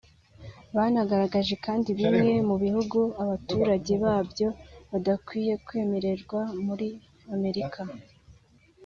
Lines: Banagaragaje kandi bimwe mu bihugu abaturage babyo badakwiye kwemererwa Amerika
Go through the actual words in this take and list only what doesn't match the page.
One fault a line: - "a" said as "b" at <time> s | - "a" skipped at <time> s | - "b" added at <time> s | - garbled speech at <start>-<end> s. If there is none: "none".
- "muri" added at 6.7 s